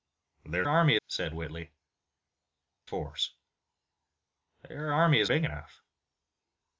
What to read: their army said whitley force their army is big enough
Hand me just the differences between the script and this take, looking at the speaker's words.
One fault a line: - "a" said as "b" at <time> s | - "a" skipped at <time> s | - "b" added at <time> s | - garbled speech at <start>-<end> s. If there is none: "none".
none